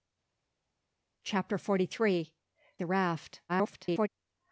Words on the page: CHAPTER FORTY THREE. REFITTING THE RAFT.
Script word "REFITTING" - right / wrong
wrong